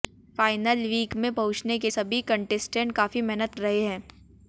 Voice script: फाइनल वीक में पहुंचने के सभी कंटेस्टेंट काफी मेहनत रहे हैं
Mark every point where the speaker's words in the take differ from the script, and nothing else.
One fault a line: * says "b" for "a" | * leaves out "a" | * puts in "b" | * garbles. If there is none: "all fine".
all fine